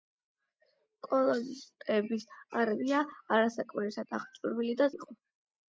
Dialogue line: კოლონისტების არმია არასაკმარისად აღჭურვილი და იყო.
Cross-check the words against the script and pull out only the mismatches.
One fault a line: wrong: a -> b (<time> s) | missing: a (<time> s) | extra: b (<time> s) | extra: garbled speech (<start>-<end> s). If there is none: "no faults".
no faults